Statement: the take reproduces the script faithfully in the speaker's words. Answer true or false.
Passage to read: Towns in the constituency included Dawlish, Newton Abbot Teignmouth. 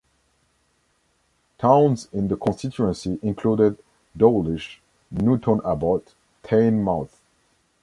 true